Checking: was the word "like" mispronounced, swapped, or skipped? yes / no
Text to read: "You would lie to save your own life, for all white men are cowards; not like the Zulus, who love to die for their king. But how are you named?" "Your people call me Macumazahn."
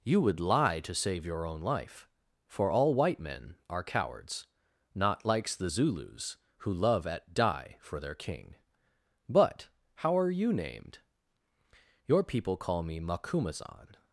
yes